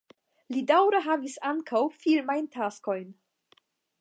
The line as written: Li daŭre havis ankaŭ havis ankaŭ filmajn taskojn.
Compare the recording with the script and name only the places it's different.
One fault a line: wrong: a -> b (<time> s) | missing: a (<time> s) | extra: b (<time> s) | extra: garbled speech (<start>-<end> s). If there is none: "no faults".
missing: havis ankaŭ (1.8 s)